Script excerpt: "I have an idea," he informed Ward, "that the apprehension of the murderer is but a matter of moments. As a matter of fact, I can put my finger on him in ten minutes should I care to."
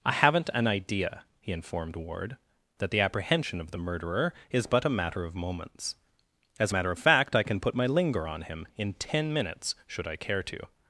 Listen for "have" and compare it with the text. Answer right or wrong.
wrong